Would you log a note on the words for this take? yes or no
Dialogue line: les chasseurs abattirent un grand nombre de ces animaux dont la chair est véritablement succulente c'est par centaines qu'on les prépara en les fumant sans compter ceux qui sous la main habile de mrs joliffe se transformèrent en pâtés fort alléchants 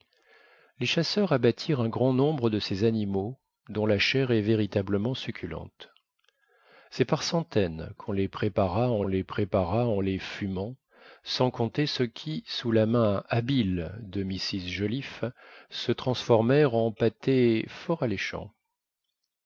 yes